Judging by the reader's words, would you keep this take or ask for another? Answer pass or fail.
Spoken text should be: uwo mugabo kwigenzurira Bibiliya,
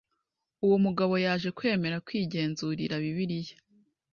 fail